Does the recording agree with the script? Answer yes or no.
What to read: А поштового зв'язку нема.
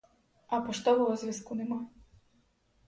yes